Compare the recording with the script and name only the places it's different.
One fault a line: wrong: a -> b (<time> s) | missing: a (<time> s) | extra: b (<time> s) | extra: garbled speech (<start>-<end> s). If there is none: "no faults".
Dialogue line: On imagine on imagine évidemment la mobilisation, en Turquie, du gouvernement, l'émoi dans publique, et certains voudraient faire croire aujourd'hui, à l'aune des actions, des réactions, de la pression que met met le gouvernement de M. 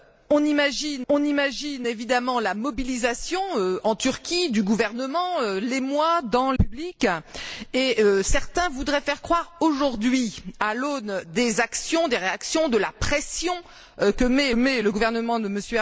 no faults